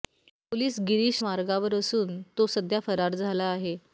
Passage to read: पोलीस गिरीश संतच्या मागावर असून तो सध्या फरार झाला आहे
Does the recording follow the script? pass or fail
fail